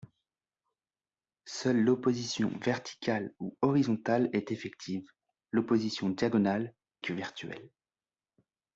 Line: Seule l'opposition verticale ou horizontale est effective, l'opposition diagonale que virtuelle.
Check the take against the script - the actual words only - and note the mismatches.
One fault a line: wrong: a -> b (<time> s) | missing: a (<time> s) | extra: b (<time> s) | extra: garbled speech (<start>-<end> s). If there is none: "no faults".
no faults